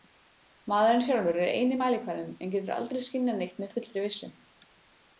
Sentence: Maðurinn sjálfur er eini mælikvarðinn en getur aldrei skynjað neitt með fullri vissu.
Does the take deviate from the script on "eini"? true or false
false